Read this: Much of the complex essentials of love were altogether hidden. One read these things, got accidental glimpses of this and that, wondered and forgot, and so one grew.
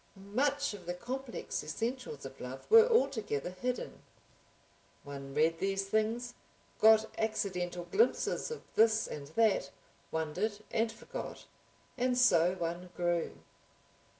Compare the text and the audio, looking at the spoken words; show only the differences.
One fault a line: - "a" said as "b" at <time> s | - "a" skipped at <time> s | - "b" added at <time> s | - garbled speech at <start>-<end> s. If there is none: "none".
none